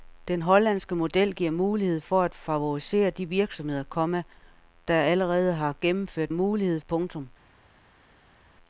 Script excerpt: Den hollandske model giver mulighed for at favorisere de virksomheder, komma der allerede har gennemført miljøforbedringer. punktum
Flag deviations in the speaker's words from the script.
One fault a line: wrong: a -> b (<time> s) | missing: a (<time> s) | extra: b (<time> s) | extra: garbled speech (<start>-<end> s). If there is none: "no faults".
wrong: miljøforbedringer -> mulighed (6.3 s)